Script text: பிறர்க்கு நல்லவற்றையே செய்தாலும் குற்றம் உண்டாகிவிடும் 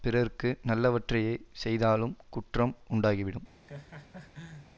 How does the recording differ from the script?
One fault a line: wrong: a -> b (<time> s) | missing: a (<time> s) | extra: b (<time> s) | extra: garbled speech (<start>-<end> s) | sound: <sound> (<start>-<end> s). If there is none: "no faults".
sound: laugh (3.6-4.7 s)